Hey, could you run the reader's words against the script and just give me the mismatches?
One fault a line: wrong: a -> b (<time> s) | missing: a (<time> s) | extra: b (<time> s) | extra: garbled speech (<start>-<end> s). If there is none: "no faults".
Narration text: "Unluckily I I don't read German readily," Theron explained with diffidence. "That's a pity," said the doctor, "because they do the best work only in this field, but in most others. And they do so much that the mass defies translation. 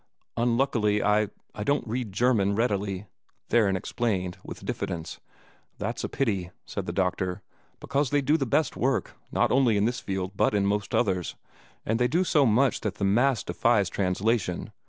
extra: not (9.3 s)